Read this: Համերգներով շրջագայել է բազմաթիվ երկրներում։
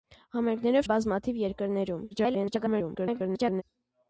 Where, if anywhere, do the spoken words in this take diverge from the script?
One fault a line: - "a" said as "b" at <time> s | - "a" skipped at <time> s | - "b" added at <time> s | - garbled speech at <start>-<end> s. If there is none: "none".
- "շրջագայել" skipped at 0.9 s
- garbled speech at 2.1-3.6 s